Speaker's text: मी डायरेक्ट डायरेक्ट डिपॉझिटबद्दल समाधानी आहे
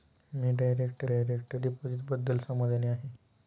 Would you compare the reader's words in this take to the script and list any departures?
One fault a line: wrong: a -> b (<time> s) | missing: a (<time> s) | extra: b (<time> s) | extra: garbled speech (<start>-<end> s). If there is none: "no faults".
no faults